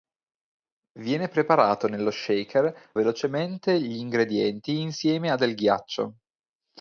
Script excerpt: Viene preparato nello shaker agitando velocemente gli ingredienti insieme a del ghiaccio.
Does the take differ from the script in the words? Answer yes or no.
yes